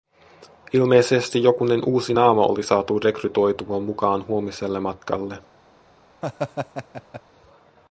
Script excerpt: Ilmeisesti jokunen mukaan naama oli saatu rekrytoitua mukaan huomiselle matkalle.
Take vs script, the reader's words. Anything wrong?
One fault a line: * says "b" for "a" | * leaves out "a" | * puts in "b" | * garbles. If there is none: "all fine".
* says "uusi" for "mukaan"